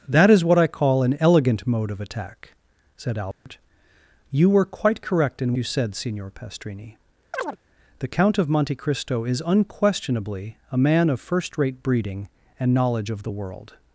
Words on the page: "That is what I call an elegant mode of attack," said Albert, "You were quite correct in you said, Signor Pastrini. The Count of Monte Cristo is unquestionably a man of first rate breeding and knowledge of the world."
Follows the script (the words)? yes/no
yes